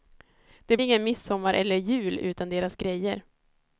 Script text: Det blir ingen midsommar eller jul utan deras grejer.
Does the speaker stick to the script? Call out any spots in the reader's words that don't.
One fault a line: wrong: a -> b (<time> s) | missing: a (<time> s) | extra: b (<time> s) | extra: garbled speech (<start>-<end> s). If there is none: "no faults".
missing: blir (0.8 s)